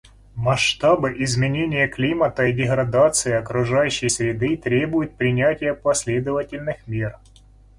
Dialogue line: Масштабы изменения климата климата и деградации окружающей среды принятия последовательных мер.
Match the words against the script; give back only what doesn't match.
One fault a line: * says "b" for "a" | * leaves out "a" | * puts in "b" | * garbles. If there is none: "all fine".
* leaves out "климата"
* puts in "требуют"